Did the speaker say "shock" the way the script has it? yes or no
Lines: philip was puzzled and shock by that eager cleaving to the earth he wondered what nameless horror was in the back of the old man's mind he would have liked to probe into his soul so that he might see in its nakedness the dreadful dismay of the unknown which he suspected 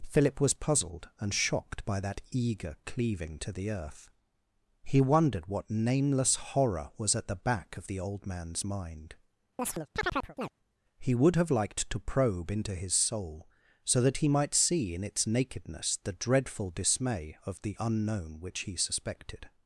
no